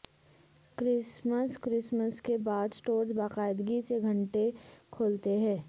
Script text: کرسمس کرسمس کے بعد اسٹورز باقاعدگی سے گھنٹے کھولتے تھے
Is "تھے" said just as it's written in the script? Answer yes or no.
no